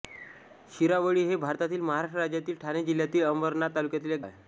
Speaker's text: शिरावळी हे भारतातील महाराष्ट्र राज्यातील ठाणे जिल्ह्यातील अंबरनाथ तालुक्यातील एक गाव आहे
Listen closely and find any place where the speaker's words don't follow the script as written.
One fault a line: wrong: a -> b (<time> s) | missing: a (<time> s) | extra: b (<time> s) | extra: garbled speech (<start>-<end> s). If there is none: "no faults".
missing: गाव (4.2 s)